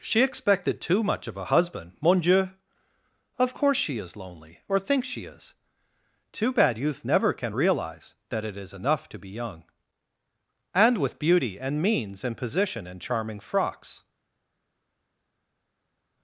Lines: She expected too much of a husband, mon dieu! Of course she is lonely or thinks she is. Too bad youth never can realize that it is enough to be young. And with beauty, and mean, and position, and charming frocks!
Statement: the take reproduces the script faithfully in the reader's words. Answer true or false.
false